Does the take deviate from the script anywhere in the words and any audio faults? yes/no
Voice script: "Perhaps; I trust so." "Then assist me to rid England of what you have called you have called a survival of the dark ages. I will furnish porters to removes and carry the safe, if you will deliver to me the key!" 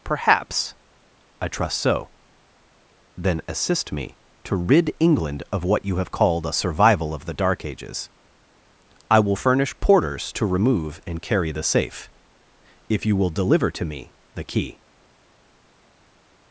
yes